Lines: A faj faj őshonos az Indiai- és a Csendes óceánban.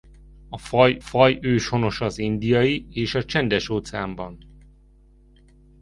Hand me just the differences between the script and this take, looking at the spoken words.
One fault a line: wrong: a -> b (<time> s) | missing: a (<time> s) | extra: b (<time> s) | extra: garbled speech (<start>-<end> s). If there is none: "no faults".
no faults